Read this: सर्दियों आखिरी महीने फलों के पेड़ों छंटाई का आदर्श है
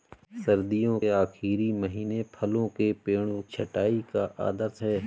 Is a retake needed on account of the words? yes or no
no